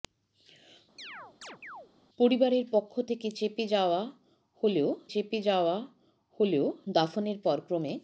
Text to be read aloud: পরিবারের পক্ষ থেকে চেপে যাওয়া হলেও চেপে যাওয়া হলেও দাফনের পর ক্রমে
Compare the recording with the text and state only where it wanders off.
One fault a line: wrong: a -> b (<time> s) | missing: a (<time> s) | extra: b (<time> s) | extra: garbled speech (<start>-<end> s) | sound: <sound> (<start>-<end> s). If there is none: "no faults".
sound: chirp (1.0-1.9 s)